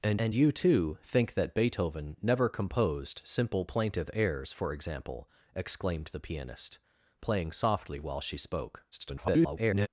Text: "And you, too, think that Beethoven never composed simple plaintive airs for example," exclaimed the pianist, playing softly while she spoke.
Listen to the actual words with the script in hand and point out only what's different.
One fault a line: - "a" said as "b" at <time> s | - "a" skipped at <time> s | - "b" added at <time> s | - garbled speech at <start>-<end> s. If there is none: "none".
- "and" added at 0.2 s
- garbled speech at 8.9-9.9 s